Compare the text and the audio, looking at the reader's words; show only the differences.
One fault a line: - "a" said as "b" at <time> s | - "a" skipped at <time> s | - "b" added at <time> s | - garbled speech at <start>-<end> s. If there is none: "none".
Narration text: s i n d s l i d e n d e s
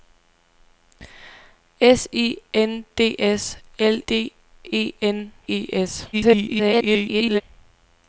- "i" skipped at 4.0 s
- "d" skipped at 5.3 s
- garbled speech at 6.1-7.4 s